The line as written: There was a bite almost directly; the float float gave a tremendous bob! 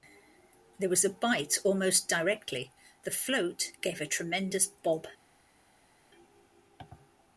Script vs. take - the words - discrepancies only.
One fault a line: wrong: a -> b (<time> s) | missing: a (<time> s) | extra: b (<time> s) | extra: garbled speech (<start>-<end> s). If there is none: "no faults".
missing: float (3.7 s)